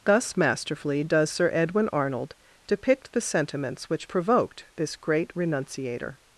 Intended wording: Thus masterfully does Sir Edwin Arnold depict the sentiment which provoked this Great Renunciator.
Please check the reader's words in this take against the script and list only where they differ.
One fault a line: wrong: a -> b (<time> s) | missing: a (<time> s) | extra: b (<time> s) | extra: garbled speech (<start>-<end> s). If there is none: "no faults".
wrong: sentiment -> sentiments (3.2 s)